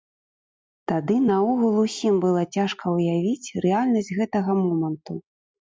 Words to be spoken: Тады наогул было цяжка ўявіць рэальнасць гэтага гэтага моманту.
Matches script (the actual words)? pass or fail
fail